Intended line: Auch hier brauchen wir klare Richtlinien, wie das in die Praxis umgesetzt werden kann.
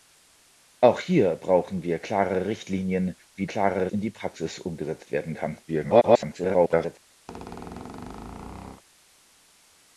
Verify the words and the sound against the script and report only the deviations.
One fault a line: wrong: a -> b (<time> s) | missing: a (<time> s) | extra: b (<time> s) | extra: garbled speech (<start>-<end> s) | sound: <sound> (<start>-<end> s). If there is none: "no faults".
wrong: das -> klare (3.4 s)
extra: garbled speech (5.7-7.0 s)
sound: squeak (7.3-8.8 s)